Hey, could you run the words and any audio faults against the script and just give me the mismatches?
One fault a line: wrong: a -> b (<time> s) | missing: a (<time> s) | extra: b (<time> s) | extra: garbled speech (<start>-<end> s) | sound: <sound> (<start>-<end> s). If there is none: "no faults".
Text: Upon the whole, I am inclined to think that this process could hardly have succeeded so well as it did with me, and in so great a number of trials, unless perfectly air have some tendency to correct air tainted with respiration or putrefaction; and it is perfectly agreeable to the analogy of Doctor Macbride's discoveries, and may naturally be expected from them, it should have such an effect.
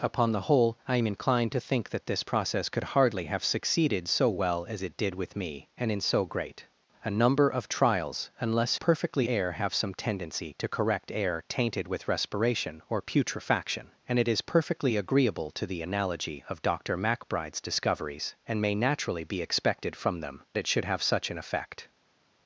no faults